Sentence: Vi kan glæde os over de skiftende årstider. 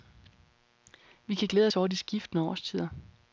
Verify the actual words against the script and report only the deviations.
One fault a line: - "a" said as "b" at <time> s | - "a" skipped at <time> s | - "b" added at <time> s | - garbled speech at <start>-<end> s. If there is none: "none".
none